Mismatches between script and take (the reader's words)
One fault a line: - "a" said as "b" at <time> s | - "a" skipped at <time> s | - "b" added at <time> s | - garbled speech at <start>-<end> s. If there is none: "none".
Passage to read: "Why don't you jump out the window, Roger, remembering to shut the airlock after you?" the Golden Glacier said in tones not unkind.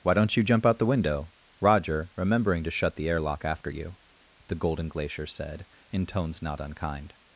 none